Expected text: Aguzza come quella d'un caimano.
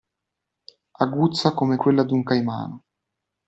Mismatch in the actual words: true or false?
false